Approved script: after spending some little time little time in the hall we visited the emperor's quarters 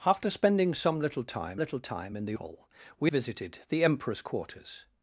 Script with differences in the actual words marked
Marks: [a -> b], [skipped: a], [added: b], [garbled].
after spending some little time little time in the hall we visited the emperor's quarters